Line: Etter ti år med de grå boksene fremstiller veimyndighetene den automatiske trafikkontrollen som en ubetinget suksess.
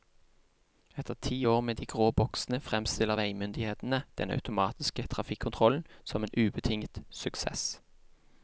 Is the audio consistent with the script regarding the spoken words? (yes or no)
yes